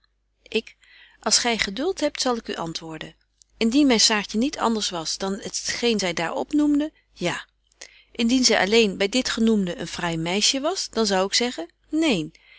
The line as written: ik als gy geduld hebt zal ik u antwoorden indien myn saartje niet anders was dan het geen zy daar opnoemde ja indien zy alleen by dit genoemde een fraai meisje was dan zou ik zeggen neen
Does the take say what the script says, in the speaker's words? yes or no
yes